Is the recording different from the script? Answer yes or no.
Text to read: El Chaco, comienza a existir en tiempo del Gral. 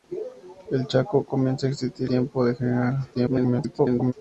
yes